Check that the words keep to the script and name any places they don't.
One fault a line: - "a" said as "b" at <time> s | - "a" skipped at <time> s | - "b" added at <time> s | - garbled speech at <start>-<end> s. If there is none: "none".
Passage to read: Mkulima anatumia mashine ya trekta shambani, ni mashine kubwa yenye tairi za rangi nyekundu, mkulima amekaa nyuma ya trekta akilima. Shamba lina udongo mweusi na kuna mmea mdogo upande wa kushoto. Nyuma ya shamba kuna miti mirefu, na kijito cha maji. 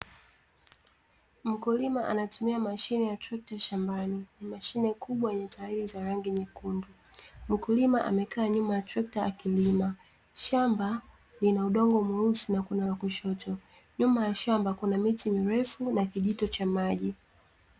- "mmea mdogo upande" skipped at 12.9 s